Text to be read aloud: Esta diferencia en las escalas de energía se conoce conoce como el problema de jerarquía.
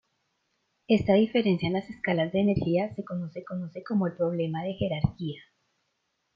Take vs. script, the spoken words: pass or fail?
pass